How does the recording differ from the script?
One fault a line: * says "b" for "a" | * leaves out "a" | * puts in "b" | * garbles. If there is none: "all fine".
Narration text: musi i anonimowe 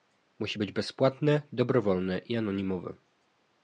* puts in "być bezpłatne dobrowolne"